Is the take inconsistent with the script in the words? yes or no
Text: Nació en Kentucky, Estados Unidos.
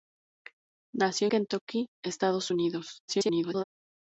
yes